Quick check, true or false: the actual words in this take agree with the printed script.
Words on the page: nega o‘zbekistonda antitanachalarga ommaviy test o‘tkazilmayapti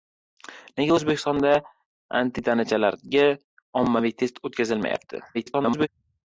false